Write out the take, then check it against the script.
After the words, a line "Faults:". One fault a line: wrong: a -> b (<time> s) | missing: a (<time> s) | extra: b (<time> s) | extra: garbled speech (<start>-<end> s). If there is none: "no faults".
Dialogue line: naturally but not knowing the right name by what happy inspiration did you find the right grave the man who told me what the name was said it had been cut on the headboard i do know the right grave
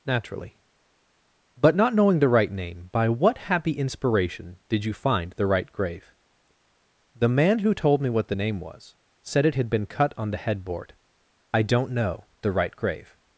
naturally but not knowing the right name by what happy inspiration did you find the right grave the man who told me what the name was said it had been cut on the headboard i don't know the right grave
Faults:
wrong: do -> don't (11.6 s)